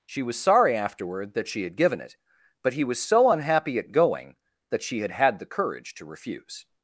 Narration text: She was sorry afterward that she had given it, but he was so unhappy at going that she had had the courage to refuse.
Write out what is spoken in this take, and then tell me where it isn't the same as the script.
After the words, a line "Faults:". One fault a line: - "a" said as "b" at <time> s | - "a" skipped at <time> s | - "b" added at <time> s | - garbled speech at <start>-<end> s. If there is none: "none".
She was sorry afterward that she had given it, but he was so unhappy at going that she had had the courage to refuse.
Faults:
none